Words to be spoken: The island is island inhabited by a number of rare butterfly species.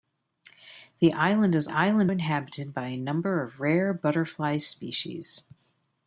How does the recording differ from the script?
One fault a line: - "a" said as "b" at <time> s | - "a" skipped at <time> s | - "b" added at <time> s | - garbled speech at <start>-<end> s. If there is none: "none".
none